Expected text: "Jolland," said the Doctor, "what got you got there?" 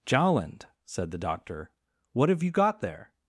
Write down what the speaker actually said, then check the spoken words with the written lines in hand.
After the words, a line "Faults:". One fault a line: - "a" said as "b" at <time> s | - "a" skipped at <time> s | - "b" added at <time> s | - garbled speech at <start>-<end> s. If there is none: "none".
"Jolland," said the Doctor, "what have you got there?"
Faults:
- "got" said as "have" at 2.3 s